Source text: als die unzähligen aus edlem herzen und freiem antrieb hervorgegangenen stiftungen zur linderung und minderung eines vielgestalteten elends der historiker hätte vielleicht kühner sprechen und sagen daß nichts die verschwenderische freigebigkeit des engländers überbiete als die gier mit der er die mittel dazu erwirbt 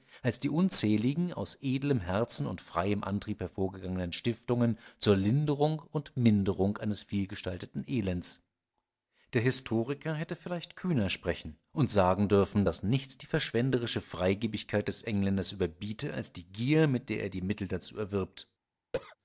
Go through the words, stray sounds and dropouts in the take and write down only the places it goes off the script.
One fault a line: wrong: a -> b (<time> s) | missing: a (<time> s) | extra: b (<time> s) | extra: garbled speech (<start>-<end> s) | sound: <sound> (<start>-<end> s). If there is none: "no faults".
extra: dürfen (12.3 s)
sound: cough (18.9-19.2 s)